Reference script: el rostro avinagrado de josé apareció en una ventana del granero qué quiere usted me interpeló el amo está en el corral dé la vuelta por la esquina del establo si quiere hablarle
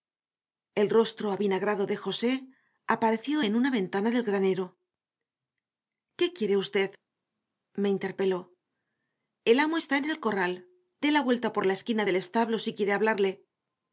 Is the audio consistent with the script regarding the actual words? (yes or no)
yes